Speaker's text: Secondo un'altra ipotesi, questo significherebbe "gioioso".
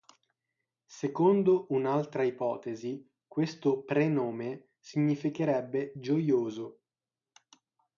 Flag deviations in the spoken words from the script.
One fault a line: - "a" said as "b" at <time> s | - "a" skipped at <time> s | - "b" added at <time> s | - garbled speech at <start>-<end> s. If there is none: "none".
- "prenome" added at 3.8 s